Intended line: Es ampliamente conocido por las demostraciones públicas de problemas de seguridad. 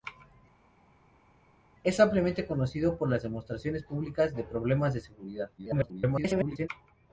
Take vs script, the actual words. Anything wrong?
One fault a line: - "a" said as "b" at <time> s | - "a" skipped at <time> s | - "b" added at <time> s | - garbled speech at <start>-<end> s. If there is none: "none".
- garbled speech at 5.6-6.7 s